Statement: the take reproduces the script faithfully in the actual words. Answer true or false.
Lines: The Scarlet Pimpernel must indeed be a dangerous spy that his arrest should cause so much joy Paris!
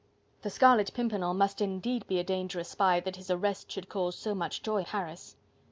true